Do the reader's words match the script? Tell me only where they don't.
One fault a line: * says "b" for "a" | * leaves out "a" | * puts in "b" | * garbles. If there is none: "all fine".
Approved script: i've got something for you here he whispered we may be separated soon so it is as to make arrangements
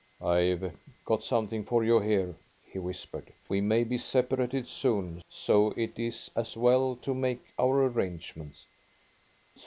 * puts in "well"
* puts in "our"